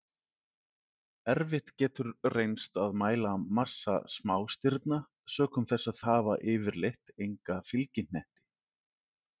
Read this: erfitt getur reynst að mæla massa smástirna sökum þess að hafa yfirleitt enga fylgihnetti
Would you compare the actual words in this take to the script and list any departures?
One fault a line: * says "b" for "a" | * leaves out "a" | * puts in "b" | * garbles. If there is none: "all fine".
all fine